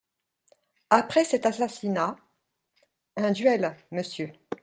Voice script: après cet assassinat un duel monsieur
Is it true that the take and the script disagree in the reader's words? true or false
false